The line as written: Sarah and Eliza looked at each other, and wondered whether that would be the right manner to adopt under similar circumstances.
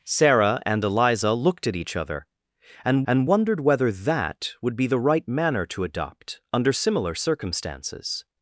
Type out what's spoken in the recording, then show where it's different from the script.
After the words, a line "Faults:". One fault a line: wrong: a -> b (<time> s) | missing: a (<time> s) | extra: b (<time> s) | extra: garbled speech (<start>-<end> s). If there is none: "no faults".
Sarah and Eliza looked at each other, and and wondered whether that would be the right manner to adopt under similar circumstances.
Faults:
extra: and (3.1 s)